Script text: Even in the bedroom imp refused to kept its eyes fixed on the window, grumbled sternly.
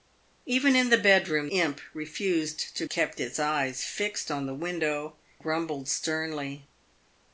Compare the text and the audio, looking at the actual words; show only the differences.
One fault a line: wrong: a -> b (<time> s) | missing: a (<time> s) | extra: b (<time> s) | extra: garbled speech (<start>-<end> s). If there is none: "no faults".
no faults